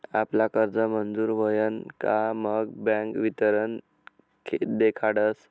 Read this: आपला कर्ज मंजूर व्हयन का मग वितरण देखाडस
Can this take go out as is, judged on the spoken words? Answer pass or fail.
fail